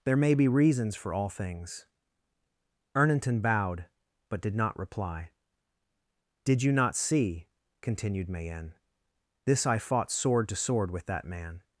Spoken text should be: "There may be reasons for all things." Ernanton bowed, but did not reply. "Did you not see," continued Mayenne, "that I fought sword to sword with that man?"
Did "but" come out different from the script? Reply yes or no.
no